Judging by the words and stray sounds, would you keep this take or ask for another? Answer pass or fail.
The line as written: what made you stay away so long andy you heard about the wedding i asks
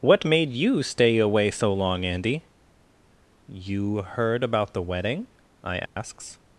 fail